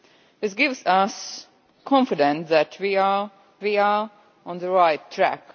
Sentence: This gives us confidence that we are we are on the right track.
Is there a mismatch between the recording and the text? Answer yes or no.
no